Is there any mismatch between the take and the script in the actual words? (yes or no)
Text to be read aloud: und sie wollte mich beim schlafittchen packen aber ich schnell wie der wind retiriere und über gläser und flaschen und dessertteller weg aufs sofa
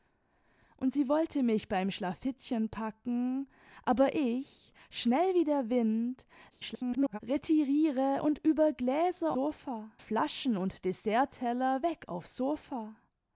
yes